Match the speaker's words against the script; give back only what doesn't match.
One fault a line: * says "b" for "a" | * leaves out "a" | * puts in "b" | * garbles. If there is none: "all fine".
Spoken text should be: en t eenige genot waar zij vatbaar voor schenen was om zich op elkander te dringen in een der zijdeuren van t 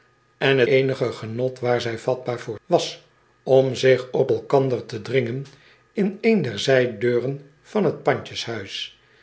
* leaves out "t"
* leaves out "schenen"